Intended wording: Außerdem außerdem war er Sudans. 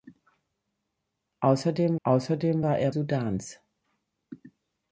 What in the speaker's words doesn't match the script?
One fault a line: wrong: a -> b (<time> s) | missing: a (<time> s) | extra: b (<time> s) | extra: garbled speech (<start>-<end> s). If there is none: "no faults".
no faults